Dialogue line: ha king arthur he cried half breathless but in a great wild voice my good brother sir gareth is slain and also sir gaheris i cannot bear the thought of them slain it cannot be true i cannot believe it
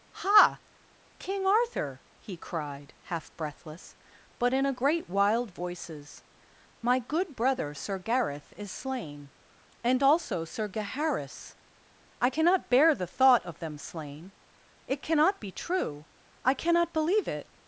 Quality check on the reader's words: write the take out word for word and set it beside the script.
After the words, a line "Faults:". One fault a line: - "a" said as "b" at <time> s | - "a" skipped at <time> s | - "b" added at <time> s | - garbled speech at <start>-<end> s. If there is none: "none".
ha king arthur he cried half breathless but in a great wild voices my good brother sir gareth is slain and also sir gaheris i cannot bear the thought of them slain it cannot be true i cannot believe it
Faults:
- "voice" said as "voices" at 5.5 s